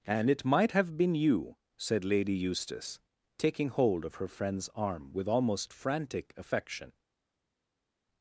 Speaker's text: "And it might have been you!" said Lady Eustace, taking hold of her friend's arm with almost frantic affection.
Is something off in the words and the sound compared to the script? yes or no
no